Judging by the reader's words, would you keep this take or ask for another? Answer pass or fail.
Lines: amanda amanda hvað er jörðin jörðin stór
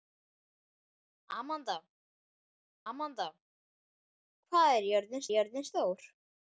pass